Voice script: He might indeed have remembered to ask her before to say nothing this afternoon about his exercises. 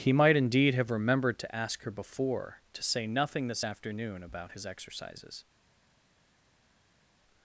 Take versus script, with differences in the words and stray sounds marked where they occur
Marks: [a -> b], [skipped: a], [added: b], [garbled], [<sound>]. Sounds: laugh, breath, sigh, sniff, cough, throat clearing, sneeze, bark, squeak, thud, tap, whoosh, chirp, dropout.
He might indeed have remembered to ask her before to say nothing this afternoon about his exercises.